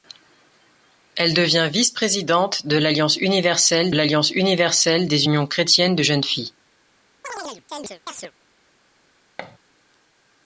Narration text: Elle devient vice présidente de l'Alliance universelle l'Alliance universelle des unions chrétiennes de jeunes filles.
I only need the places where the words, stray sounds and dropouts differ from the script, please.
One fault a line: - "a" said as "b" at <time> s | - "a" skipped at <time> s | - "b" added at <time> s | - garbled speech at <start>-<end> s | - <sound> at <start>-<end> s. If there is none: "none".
- chirp at 7.2-8.3 s
- thud at 9.4-9.6 s